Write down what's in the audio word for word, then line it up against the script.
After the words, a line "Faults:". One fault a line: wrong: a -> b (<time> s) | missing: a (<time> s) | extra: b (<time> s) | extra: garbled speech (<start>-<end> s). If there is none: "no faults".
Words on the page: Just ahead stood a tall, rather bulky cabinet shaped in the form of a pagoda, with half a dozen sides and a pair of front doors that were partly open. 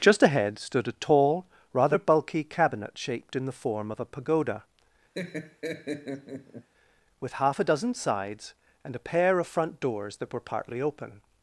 Just ahead stood a tall, rather bulky cabinet shaped in the form of a pagoda, with half a dozen sides and a pair of front doors that were partly open.
Faults:
no faults